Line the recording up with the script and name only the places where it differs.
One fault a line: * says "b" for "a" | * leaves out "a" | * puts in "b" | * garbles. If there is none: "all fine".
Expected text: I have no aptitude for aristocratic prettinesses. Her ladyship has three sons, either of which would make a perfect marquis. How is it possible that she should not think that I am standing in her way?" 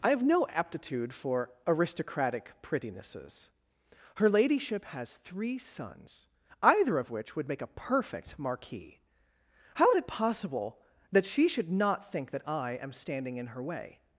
all fine